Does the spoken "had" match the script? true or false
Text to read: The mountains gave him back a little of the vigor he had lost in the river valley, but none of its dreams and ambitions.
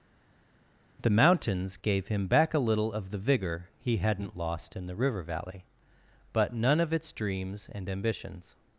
false